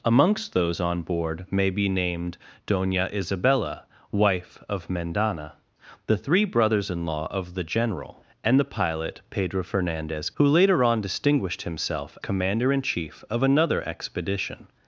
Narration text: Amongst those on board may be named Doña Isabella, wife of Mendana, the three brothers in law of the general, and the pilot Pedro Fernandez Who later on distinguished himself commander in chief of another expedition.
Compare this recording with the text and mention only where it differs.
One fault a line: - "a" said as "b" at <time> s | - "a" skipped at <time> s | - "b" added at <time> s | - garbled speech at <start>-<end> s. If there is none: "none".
none